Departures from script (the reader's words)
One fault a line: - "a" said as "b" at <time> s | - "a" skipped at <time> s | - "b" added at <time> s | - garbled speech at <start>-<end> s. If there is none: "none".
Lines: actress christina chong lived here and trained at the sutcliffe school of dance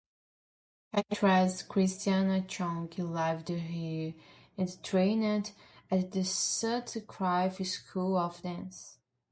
none